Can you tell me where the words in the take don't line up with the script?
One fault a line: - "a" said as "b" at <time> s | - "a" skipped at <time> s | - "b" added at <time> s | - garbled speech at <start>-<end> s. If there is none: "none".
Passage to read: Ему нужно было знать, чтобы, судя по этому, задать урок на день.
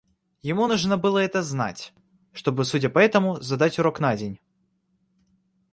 - "это" added at 1.2 s